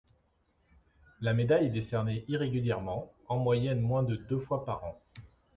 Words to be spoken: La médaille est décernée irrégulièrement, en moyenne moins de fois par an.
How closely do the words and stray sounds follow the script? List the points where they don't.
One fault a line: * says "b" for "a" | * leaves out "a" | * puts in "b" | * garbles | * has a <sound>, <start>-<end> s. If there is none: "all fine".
* puts in "deux"